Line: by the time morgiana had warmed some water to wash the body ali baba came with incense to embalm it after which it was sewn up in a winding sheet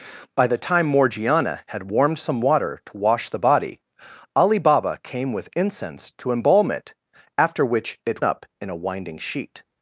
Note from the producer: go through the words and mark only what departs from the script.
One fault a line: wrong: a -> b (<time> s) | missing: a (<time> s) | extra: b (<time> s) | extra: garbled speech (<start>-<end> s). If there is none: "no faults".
missing: was sewn (8.2 s)